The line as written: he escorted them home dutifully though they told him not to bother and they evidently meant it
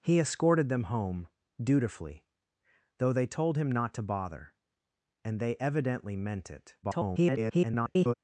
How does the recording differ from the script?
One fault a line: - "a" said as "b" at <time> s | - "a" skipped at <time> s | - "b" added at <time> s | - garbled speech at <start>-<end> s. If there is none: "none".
- garbled speech at 6.8-8.1 s